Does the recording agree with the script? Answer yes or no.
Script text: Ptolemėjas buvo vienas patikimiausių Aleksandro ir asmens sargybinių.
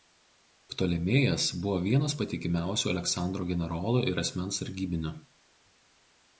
no